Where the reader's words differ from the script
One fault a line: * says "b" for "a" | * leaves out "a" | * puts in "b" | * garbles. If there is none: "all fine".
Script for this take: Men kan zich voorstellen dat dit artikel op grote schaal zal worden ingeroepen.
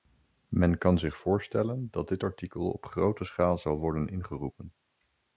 all fine